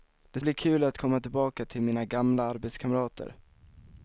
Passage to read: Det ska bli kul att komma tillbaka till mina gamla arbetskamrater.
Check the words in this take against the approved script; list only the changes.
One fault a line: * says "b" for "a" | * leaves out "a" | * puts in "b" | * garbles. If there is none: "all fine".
* leaves out "ska"